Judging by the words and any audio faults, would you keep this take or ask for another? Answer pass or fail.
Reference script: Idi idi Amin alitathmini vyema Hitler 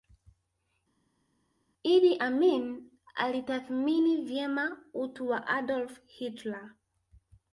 fail